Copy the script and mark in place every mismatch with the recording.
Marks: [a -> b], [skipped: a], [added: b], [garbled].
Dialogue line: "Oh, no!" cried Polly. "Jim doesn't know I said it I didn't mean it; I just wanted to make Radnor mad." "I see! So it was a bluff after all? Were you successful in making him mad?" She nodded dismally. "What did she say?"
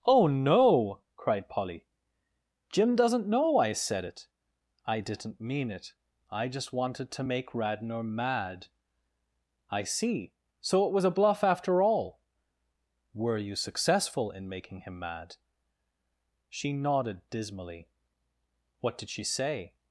"Oh, no!" cried Polly. "Jim doesn't know I said it I didn't mean it; I just wanted to make Radnor mad." "I see! So it was a bluff after all? Were you successful in making him mad?" She nodded dismally. "What did she say?"